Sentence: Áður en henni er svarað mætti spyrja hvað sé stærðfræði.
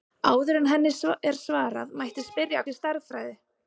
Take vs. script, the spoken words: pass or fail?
fail